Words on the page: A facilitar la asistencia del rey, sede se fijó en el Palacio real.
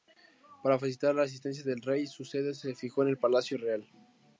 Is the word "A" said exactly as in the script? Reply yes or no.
no